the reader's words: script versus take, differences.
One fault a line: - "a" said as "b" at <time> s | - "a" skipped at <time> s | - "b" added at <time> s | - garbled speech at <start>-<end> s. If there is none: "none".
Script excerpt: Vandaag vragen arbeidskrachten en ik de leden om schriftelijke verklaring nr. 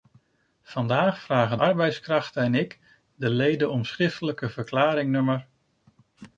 none